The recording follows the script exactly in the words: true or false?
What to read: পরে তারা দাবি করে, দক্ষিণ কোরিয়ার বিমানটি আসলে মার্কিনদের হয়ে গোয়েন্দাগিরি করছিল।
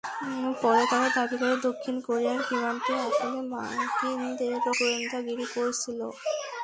false